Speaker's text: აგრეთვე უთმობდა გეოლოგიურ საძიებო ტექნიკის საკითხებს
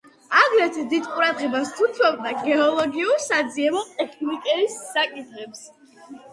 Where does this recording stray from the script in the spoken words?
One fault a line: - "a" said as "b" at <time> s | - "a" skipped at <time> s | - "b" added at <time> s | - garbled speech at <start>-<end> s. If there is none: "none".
- "დიდ ყურადღებას" added at 0.9 s